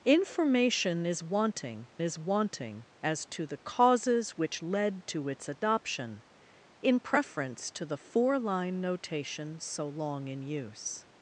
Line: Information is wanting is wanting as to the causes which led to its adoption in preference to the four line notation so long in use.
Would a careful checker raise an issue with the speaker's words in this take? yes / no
no